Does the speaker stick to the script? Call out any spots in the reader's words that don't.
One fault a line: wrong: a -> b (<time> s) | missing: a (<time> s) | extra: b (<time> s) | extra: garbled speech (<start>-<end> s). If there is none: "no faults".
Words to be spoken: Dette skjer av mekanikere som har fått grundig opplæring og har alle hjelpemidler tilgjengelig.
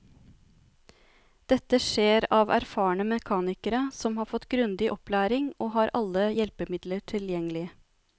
extra: erfarne (2.5 s)